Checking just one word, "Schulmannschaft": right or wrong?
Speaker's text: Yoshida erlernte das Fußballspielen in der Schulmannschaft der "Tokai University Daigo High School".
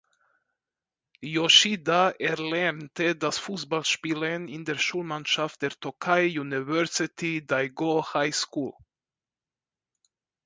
right